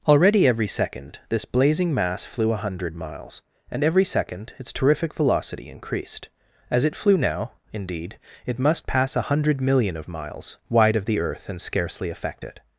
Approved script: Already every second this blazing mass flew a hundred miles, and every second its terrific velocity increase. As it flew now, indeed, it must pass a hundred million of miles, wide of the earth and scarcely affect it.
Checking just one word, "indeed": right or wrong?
right